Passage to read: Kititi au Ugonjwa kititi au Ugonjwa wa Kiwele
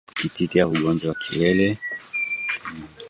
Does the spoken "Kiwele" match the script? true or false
true